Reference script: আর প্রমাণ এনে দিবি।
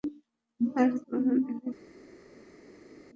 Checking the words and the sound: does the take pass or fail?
pass